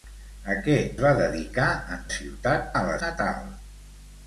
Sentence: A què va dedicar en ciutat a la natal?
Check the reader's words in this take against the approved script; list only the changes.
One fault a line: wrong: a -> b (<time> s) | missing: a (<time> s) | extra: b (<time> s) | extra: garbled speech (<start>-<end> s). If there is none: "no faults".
no faults